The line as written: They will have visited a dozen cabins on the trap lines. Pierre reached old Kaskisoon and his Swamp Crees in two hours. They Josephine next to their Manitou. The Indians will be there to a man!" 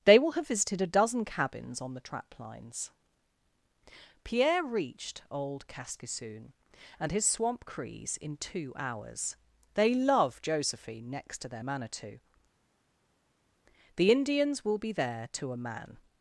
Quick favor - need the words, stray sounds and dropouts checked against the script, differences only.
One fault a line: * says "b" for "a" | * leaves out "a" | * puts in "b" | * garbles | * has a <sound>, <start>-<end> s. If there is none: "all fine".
* puts in "love"